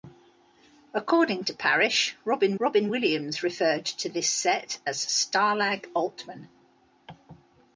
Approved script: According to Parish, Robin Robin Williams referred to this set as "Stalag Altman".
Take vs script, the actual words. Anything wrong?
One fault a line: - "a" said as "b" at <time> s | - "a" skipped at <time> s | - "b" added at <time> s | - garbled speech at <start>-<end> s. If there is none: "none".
none